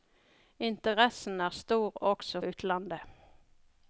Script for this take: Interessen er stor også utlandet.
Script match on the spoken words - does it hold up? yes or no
yes